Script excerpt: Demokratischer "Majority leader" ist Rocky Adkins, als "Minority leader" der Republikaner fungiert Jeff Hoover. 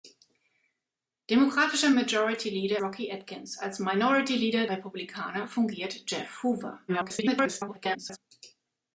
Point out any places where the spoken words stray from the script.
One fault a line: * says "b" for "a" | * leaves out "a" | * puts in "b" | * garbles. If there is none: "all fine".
* leaves out "ist"
* leaves out "der"
* garbles